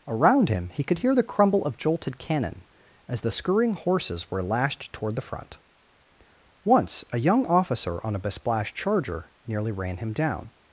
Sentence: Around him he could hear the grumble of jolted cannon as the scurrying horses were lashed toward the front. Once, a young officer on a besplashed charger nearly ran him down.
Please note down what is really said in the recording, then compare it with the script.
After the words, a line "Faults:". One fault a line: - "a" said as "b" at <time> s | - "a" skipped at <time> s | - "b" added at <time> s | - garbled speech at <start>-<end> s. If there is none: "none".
Around him he could hear the crumble of jolted cannon as the scurrying horses were lashed toward the front. Once, a young officer on a besplashed charger nearly ran him down.
Faults:
- "grumble" said as "crumble" at 1.2 s